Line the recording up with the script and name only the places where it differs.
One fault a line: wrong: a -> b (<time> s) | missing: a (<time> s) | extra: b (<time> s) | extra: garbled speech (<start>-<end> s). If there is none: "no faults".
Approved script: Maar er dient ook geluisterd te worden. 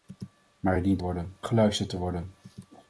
wrong: ook -> worden (1.0 s)